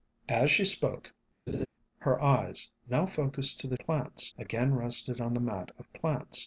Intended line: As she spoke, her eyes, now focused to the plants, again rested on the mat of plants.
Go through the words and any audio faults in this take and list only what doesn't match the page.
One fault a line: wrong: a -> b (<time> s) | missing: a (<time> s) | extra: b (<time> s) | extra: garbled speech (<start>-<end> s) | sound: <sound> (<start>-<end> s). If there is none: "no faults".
sound: laugh (1.5-1.7 s)